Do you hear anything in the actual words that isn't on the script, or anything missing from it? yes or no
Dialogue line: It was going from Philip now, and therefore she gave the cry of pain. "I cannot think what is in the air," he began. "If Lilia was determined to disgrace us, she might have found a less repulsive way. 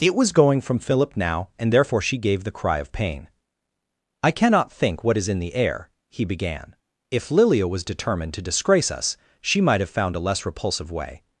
no